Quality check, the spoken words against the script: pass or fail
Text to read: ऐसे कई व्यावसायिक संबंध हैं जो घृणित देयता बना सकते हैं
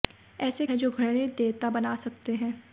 fail